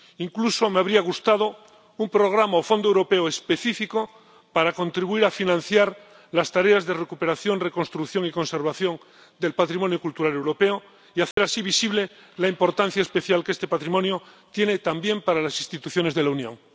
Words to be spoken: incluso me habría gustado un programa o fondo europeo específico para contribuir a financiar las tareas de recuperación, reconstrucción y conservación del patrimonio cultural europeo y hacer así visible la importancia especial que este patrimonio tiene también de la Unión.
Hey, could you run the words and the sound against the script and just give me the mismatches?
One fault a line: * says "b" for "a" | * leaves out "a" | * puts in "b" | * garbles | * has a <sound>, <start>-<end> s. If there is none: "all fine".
* has a dropout, 11.3-11.4 s
* puts in "para las instituciones"